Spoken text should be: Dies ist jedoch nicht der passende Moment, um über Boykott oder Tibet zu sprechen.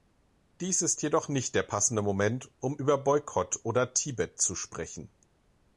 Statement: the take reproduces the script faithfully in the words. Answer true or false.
true